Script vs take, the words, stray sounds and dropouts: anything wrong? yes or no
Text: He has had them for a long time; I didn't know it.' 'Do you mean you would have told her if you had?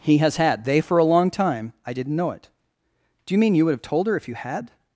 yes